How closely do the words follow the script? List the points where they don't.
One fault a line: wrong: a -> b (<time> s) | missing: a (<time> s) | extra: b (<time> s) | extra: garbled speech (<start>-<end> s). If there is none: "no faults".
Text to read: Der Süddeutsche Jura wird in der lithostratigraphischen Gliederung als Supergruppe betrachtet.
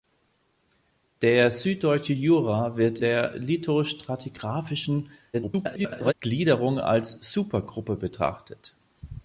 missing: in (3.0 s)
extra: garbled speech (5.3-6.1 s)